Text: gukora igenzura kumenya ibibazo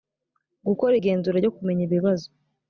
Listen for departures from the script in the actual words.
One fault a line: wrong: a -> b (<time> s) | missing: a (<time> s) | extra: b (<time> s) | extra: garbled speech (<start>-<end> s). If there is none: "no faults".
extra: ryo (1.4 s)